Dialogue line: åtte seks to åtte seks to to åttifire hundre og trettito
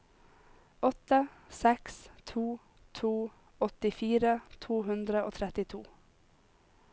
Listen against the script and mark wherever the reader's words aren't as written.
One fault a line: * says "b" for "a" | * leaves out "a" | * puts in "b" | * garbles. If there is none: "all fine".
* says "to åttifire" for "åtte seks"
* leaves out "to åttifire"